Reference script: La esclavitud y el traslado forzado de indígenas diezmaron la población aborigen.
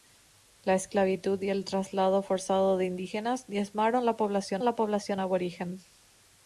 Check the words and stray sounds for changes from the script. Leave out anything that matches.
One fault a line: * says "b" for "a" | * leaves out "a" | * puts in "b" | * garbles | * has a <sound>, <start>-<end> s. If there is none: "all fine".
* puts in "la población"